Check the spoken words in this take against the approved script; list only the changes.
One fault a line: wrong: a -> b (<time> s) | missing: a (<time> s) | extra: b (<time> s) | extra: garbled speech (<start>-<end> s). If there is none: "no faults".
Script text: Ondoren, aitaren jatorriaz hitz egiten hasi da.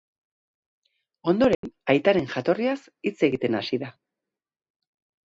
no faults